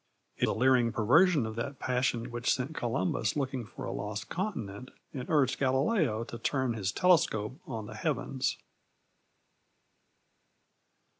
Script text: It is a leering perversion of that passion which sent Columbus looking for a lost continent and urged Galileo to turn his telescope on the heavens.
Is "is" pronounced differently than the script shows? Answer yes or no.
yes